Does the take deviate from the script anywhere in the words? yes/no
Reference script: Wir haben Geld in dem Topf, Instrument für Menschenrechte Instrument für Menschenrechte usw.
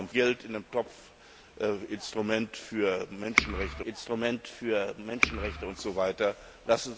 no